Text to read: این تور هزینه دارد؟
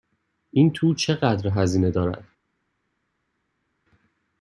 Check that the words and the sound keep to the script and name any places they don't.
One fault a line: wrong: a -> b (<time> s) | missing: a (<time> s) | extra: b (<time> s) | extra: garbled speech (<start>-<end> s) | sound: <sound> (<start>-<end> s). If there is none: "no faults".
extra: چقدر (0.9 s)